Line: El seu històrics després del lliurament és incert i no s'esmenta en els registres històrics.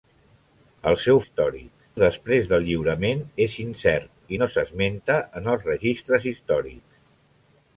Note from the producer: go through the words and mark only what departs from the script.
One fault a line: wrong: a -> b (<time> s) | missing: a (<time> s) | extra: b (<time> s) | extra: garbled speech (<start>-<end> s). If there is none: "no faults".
no faults